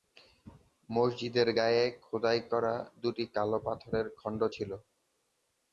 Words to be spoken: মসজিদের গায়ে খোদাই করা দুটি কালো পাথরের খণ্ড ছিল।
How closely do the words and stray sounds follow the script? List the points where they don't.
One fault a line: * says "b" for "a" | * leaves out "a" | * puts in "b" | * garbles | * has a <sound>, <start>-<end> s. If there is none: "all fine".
all fine